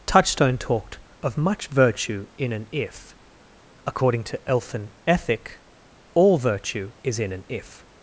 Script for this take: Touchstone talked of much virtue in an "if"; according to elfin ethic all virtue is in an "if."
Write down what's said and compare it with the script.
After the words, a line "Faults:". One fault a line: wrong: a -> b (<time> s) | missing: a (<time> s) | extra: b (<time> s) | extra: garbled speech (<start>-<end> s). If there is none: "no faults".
Touchstone talked of much virtue in an "if"; according to elfin ethic all virtue is in an "if."
Faults:
no faults